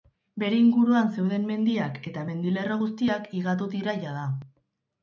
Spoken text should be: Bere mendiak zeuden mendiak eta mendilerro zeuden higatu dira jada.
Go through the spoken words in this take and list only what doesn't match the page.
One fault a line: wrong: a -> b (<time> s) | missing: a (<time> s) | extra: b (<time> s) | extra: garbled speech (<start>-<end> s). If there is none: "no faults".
wrong: mendiak -> inguruan (0.6 s)
wrong: zeuden -> guztiak (2.8 s)